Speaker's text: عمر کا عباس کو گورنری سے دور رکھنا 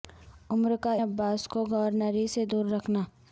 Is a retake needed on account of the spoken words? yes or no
no